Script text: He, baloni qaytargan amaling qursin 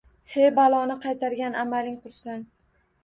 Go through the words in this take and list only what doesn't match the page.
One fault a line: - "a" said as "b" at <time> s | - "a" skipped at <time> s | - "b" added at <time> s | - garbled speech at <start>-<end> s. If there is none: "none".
none